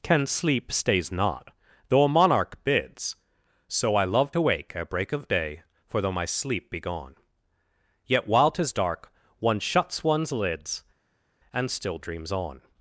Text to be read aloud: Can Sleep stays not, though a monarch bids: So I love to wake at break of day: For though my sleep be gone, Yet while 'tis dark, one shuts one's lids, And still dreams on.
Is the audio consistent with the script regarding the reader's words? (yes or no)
yes